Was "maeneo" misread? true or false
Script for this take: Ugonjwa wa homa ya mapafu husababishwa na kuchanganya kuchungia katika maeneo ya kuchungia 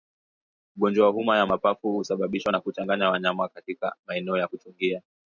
false